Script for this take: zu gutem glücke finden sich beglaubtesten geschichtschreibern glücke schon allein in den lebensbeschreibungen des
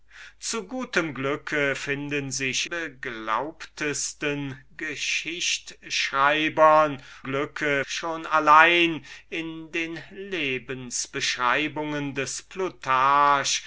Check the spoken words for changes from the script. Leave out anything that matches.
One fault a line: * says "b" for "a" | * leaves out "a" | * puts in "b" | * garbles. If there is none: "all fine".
all fine